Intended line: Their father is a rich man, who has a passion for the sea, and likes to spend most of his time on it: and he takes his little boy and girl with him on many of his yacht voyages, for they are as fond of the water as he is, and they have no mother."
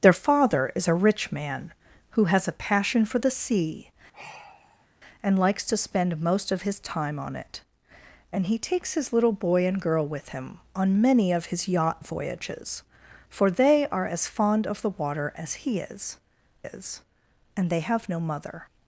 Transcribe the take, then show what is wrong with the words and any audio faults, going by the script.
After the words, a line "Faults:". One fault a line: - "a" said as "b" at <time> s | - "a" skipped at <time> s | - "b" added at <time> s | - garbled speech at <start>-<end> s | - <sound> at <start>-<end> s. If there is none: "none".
Their father is a rich man, who has a passion for the sea, and likes to spend most of his time on it: and he takes his little boy and girl with him on many of his yacht voyages, for they are as fond of the water as he is is, and they have no mother."
Faults:
- sigh at 4.1-4.9 s
- "is" added at 16.6 s